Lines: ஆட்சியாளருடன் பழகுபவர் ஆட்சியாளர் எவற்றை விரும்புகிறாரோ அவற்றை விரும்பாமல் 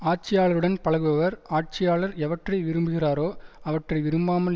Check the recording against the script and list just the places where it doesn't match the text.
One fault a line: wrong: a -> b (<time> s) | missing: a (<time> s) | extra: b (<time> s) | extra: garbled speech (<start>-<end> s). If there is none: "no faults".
no faults